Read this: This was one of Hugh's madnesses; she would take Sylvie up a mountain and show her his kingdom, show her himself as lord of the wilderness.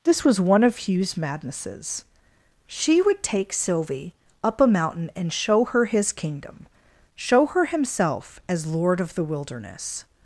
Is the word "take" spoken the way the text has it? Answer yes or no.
yes